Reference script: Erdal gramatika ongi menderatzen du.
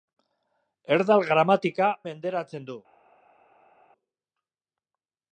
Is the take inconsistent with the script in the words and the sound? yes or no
yes